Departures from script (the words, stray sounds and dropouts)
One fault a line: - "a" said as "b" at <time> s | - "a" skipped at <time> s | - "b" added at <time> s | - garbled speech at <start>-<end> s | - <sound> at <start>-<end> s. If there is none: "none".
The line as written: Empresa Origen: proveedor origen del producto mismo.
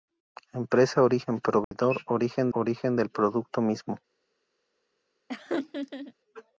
- dropout at 1.6-1.7 s
- "origen" added at 2.5 s
- laugh at 5.3-6.1 s